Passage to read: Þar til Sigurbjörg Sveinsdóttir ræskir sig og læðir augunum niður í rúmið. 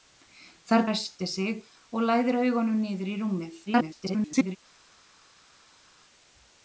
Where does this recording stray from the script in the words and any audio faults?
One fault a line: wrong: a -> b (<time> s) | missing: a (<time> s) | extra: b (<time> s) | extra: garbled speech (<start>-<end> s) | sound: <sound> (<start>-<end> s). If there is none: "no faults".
missing: til Sigurbjörg Sveinsdóttir (0.8 s)
extra: garbled speech (3.7-4.6 s)